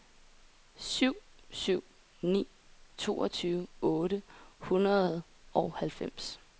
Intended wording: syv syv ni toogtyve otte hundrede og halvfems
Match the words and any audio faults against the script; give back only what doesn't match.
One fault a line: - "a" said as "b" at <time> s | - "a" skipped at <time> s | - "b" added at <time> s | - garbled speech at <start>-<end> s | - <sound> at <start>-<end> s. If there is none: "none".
none